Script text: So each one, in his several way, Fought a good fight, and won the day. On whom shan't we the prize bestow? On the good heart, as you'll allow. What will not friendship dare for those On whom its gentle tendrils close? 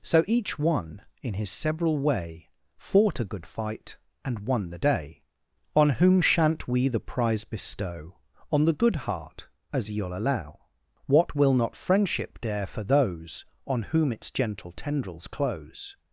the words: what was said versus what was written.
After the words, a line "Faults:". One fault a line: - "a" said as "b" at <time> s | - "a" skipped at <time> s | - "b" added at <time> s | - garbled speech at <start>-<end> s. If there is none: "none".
So each one, in his several way, Fought a good fight, and won the day. On whom shan't we the prize bestow? On the good heart, as you'll allow. What will not friendship dare for those On whom its gentle tendrils close?
Faults:
none